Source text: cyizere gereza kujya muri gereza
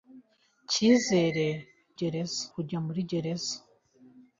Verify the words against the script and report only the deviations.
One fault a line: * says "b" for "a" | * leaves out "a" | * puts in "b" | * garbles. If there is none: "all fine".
all fine